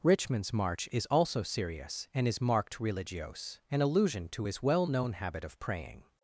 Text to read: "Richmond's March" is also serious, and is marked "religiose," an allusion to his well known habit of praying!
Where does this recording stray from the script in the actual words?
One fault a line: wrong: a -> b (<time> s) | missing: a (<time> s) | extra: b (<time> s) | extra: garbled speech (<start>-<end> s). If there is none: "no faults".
no faults